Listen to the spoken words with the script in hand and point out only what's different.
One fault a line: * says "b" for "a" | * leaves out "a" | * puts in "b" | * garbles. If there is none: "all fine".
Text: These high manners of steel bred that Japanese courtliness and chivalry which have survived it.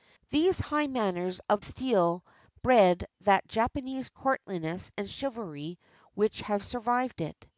all fine